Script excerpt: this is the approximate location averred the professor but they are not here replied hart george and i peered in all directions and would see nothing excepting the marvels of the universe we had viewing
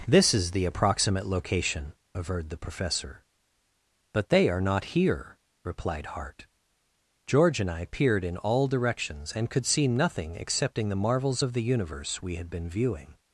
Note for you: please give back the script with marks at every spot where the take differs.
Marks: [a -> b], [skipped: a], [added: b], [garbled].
this is the approximate location averred the professor but they are not here replied hart george and i peered in all directions and [would -> could] see nothing excepting the marvels of the universe we had [added: been] viewing